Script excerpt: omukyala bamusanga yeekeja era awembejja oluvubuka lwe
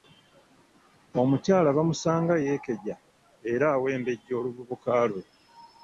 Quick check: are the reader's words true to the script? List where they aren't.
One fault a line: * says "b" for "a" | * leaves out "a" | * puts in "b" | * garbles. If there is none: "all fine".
all fine